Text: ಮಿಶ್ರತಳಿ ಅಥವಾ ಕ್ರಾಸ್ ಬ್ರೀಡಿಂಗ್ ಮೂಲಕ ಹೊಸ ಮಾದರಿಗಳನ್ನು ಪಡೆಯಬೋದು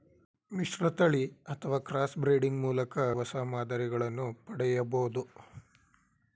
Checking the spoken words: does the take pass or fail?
pass